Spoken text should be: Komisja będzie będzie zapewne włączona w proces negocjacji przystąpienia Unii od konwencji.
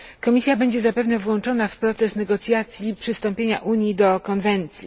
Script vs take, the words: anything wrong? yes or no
yes